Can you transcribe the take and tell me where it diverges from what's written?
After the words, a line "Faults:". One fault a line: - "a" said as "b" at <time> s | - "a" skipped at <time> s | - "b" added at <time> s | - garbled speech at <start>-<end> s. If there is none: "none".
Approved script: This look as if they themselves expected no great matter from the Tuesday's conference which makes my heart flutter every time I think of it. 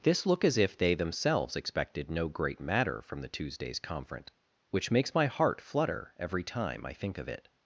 This look as if they themselves expected no great matter from the Tuesday's conference which makes my heart flutter every time I think of it.
Faults:
none